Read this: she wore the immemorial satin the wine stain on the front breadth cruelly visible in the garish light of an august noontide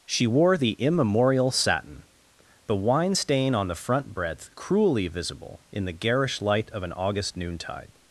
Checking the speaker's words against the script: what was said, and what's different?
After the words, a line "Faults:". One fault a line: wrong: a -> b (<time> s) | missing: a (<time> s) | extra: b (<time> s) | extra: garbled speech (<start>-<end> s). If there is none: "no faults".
she wore the immemorial satin the wine stain on the front breadth cruelly visible in the garish light of an august noontide
Faults:
no faults